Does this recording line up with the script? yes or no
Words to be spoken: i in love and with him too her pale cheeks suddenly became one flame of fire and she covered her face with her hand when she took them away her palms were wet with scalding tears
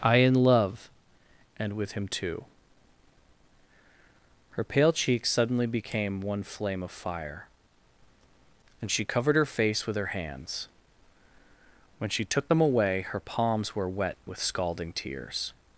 no